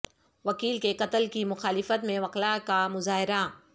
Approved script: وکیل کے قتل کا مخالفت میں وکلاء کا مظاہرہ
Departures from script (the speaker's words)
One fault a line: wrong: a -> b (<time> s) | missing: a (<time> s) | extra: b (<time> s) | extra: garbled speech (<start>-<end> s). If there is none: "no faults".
wrong: کا -> کی (1.3 s)